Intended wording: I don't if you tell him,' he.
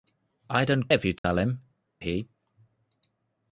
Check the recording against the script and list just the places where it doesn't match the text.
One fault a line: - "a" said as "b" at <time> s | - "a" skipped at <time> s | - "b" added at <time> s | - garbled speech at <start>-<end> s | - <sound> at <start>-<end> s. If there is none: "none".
- dropout at 1.2-1.2 s